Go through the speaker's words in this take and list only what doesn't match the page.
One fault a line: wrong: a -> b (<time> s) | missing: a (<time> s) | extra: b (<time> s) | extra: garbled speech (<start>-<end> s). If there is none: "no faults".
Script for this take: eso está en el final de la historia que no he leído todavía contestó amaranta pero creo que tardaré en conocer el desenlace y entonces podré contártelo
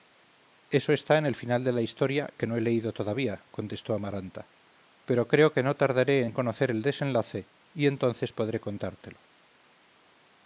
extra: no (5.6 s)